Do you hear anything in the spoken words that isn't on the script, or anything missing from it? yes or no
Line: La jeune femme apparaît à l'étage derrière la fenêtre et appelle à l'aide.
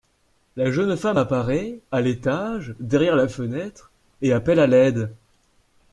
no